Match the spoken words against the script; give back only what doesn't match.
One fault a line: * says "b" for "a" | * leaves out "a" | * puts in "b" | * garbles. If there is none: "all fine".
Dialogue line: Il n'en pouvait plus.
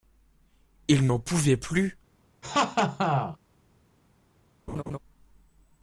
all fine